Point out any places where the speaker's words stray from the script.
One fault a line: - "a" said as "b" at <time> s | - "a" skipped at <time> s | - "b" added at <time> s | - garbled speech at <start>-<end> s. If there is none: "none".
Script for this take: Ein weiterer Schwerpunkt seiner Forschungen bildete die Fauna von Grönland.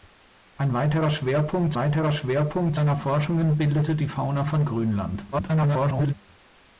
- "weiterer Schwerpunkt" added at 1.7 s
- garbled speech at 5.3-6.1 s